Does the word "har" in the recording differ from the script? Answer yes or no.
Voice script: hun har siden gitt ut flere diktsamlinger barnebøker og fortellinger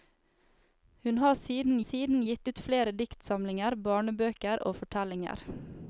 no